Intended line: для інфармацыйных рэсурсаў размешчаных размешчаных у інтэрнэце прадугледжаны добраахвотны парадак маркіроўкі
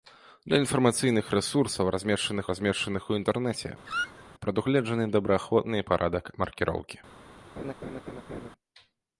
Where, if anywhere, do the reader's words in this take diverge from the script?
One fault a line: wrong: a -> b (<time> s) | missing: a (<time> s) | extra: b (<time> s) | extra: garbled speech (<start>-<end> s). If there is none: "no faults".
no faults